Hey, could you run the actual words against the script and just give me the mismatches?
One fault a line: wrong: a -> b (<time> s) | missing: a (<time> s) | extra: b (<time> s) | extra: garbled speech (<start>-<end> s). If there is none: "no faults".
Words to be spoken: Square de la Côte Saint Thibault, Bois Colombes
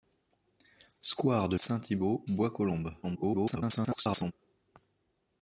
missing: la Côte (1.6 s)
extra: garbled speech (3.0-4.3 s)